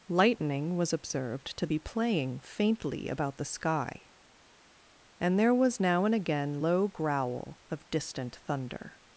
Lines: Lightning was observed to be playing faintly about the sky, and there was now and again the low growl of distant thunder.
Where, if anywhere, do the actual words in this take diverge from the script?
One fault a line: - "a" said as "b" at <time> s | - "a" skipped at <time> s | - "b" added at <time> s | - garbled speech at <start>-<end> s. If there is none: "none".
- "the" skipped at 6.6 s